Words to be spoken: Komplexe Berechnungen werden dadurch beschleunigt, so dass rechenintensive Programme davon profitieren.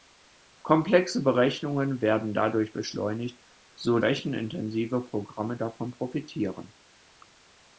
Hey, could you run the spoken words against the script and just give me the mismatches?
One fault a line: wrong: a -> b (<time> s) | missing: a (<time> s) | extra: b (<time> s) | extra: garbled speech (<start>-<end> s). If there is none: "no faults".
missing: dass (4.0 s)